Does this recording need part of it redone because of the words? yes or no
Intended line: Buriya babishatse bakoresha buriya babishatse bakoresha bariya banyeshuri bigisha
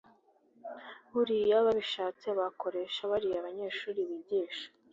yes